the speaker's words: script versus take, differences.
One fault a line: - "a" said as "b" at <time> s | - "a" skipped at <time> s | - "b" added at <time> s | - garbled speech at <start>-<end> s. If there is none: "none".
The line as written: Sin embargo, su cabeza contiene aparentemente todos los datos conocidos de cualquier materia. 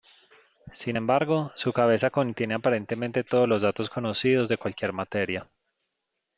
none